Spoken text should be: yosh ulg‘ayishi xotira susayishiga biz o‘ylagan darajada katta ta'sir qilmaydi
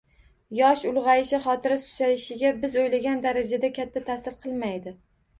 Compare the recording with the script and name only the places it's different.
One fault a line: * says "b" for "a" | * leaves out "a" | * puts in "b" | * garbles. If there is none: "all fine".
all fine